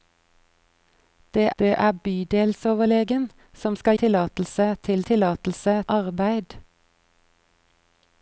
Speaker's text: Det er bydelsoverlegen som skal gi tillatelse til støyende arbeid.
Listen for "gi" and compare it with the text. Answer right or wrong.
wrong